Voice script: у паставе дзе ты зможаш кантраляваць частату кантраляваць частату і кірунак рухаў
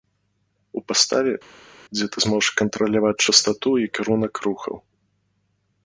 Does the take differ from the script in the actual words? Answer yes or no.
yes